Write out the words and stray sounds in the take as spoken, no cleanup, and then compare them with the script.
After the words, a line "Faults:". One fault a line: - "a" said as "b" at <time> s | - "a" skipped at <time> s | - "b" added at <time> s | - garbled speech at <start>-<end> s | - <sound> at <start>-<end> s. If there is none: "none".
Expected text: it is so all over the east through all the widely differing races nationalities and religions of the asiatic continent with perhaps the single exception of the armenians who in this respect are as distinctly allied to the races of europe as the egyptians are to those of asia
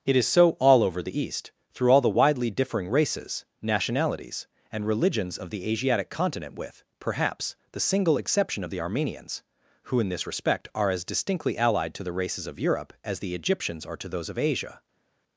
it is so all over the east through all the widely differing races nationalities and religions of the asiatic continent with perhaps the single exception of the armenians who in this respect are as distinctly allied to the races of europe as the egyptians are to those of asia
Faults:
none